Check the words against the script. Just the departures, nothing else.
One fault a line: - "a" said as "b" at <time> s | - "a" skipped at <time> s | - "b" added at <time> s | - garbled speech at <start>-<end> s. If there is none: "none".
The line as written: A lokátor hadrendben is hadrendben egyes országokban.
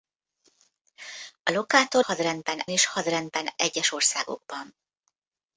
none